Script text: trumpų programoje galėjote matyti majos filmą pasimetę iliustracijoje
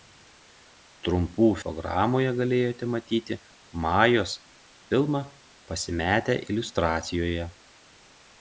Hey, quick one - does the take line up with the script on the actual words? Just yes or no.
yes